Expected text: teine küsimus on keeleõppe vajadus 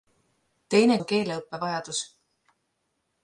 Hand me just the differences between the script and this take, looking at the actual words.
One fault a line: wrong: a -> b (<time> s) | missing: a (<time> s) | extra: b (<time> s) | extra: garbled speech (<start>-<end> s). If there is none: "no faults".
missing: küsimus (1.0 s)